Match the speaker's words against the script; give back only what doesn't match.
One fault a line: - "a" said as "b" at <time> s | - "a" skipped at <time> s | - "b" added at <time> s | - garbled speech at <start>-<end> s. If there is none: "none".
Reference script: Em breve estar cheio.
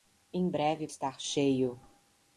none